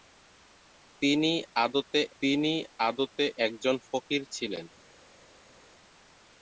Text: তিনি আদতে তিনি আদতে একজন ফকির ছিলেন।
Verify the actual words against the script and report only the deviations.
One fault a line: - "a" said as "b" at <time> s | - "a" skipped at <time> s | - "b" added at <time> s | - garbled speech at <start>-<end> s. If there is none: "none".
none